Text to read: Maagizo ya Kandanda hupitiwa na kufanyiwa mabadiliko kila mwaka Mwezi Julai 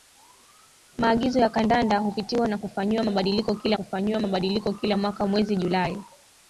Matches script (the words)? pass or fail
fail